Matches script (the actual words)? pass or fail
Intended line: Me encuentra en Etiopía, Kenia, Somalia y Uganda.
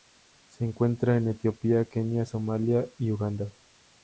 fail